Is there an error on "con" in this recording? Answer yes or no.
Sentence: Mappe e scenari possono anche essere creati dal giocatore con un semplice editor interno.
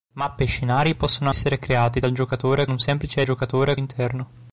yes